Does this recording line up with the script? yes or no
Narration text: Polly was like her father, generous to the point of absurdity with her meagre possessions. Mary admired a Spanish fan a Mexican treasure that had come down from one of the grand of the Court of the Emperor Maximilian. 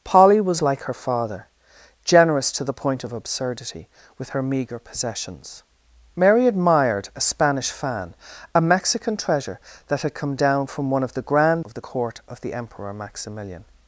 yes